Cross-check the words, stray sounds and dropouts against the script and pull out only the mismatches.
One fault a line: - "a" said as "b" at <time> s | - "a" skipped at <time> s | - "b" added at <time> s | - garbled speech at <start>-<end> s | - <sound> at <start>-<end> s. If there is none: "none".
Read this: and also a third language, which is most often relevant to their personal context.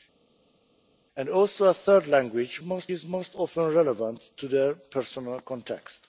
- "which" said as "most" at 2.6 s